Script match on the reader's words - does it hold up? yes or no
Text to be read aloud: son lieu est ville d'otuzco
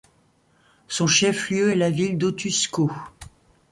no